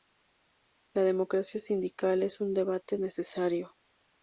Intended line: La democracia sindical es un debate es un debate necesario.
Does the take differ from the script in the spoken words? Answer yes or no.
yes